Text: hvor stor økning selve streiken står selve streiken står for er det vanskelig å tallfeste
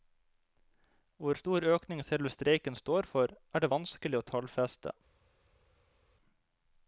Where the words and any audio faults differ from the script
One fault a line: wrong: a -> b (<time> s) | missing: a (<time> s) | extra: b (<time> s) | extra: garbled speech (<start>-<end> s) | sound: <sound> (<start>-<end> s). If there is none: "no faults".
missing: selve streiken står (3.1 s)